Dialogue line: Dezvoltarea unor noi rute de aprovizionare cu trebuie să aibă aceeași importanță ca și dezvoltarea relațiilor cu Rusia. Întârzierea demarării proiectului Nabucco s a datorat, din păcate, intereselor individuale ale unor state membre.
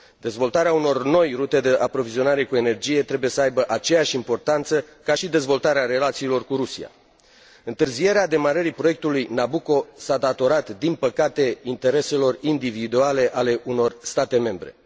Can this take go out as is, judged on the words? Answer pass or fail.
fail